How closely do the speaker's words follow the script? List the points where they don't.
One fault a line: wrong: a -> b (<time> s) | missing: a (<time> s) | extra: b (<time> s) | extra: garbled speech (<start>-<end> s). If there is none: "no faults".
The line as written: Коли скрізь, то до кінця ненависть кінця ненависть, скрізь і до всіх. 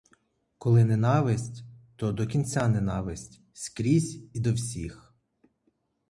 wrong: скрізь -> ненависть (0.8 s)
missing: кінця ненависть (3.4 s)